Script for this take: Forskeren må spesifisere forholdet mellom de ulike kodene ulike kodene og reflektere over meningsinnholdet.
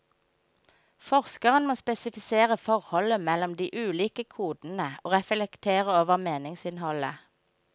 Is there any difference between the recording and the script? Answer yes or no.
yes